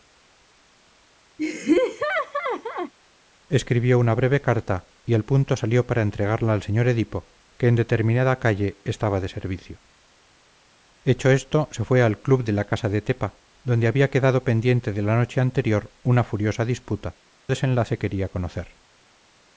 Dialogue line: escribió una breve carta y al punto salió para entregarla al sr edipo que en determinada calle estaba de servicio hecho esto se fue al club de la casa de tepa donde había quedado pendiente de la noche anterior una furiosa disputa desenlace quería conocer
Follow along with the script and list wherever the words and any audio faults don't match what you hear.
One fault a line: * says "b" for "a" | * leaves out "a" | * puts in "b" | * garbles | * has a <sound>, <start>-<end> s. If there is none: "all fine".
* has a laugh, 1.4-2.9 s